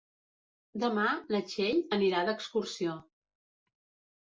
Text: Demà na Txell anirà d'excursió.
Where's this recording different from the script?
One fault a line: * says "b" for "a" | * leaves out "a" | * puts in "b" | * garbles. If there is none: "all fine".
all fine